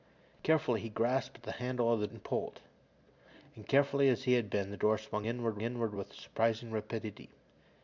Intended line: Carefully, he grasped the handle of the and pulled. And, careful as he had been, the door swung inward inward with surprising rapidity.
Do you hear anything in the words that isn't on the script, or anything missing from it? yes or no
no